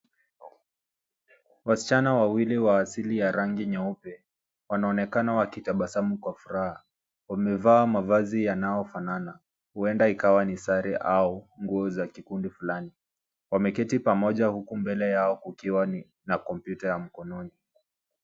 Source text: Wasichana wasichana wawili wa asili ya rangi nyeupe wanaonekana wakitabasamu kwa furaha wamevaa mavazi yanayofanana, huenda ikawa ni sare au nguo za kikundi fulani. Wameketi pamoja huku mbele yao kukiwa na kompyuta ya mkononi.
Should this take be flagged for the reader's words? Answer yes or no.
yes